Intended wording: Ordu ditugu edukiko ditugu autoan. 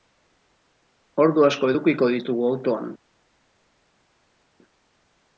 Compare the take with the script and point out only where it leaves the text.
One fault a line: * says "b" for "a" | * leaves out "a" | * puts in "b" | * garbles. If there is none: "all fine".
* says "asko" for "ditugu"